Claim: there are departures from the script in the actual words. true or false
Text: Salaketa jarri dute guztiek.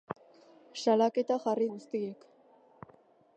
true